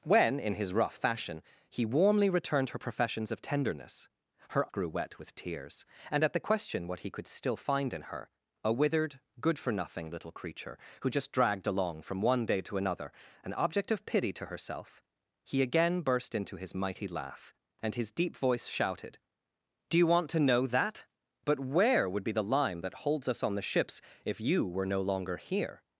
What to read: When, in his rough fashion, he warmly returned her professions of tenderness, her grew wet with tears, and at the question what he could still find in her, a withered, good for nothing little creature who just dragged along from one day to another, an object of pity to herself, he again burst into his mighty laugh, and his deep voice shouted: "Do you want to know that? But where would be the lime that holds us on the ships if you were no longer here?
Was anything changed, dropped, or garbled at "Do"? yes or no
no